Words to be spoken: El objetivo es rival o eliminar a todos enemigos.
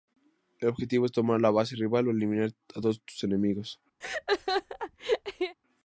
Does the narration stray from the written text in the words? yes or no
yes